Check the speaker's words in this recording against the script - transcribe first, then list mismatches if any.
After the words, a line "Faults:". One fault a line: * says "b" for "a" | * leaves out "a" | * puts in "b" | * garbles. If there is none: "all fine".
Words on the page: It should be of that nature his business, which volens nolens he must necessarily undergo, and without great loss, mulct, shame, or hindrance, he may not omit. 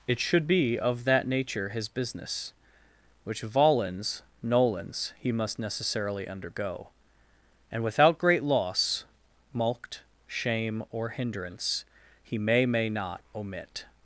It should be of that nature his business, which volens nolens he must necessarily undergo, and without great loss, mulct, shame, or hindrance, he may may not omit.
Faults:
* puts in "may"